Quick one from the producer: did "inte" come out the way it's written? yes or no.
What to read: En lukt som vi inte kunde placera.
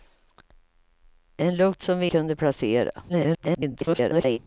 no